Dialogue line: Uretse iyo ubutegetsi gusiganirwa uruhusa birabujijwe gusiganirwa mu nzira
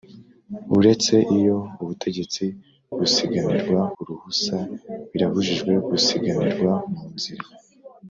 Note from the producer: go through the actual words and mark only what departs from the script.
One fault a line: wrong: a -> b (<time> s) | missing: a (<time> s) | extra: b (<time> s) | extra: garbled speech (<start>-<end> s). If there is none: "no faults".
no faults